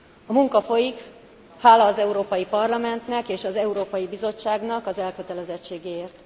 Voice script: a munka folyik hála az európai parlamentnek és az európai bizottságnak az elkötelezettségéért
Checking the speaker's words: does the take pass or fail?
pass